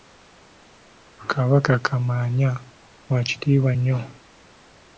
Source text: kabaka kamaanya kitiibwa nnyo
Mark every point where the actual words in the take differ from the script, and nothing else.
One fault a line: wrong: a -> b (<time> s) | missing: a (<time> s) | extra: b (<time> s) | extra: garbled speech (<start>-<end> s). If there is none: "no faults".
extra: wa (3.1 s)